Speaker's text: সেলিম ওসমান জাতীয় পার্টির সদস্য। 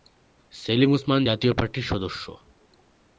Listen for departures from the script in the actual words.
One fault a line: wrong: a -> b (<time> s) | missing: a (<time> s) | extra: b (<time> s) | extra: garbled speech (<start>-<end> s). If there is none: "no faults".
no faults